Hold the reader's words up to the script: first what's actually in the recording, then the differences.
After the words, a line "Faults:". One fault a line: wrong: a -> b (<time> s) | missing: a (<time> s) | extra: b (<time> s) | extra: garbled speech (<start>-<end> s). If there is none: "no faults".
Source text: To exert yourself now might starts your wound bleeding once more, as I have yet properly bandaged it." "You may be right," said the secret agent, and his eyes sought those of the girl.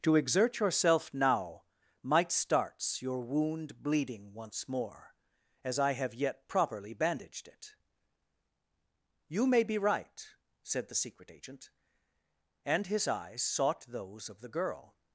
To exert yourself now might starts your wound bleeding once more, as I have yet properly bandaged it." "You may be right," said the secret agent, and his eyes sought those of the girl.
Faults:
no faults